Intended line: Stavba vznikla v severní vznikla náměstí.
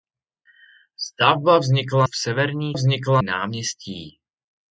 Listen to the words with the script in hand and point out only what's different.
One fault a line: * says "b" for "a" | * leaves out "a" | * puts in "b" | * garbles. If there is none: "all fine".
all fine